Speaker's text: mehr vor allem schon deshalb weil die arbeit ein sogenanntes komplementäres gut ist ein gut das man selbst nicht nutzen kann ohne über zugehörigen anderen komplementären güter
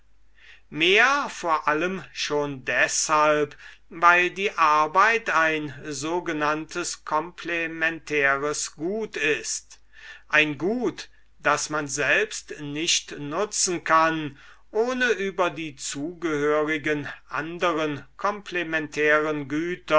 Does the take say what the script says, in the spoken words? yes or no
no